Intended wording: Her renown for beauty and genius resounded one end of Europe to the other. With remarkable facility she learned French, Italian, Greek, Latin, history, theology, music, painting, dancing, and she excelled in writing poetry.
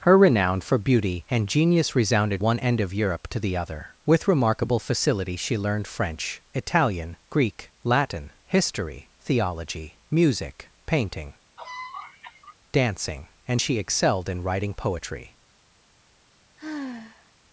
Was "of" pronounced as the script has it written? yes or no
yes